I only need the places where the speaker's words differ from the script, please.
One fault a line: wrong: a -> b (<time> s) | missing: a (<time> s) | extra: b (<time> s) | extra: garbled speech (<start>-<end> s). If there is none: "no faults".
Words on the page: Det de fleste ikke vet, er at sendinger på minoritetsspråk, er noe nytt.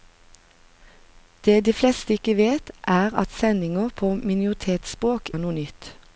no faults